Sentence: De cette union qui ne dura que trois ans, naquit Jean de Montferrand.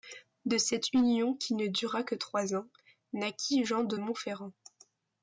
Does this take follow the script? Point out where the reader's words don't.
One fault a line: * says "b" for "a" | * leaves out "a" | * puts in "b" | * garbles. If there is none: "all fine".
all fine